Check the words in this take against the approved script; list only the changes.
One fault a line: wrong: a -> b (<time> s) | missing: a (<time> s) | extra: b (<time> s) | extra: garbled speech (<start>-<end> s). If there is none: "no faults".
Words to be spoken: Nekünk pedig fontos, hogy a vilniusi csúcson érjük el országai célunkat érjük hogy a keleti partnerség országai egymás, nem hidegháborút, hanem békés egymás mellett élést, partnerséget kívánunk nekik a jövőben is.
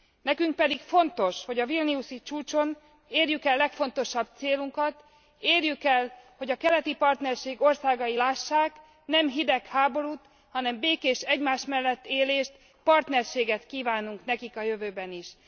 wrong: országai -> legfontosabb (3.6 s)
extra: el (5.8 s)
wrong: egymás -> lássák (8.2 s)